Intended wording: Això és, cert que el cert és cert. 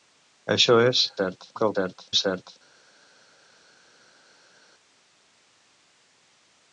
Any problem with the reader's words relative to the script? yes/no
no